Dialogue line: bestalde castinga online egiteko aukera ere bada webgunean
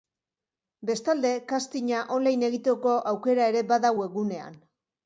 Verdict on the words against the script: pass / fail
pass